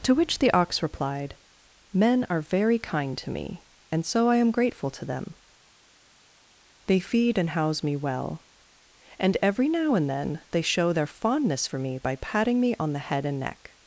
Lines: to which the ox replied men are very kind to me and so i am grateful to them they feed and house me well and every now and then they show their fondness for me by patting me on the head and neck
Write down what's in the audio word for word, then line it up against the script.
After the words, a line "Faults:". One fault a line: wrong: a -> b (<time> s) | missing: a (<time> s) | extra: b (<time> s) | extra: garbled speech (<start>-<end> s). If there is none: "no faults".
to which the ox replied men are very kind to me and so i am grateful to them they feed and house me well and every now and then they show their fondness for me by patting me on the head and neck
Faults:
no faults